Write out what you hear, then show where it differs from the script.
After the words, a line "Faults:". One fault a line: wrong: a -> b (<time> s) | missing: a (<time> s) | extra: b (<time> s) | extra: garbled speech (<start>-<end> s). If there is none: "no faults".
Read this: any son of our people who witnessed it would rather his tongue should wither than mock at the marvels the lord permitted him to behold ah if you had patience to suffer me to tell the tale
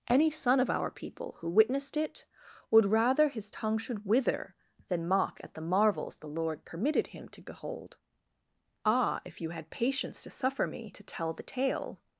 any son of our people who witnessed it would rather his tongue should wither than mock at the marvels the lord permitted him to behold ah if you had patience to suffer me to tell the tale
Faults:
no faults